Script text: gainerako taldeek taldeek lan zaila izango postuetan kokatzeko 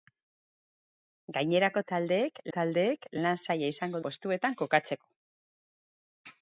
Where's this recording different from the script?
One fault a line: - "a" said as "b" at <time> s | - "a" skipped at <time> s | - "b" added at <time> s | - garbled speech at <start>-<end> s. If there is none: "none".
none